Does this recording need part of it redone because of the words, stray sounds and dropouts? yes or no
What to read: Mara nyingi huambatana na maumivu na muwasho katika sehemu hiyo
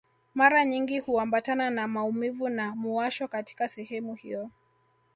no